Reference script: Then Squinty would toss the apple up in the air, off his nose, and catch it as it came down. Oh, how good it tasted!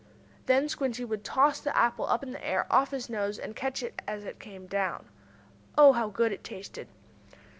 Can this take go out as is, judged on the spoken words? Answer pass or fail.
pass